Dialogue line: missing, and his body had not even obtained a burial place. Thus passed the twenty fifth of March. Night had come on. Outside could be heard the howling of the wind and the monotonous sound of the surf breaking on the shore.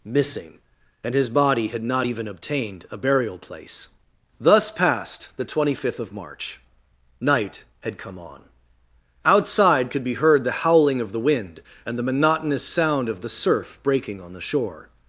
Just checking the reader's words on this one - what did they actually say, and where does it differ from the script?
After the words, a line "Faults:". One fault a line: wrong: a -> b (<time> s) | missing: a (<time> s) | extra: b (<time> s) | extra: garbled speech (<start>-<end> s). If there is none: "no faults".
missing, and his body had not even obtained a burial place. Thus passed the twenty fifth of March. Night had come on. Outside could be heard the howling of the wind and the monotonous sound of the surf breaking on the shore.
Faults:
no faults